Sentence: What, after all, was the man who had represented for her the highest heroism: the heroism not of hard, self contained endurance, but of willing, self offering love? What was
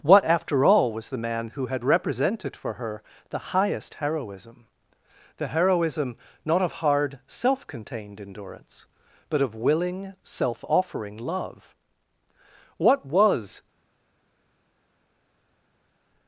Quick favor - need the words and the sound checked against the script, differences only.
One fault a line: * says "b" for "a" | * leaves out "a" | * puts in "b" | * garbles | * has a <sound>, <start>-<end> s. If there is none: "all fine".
all fine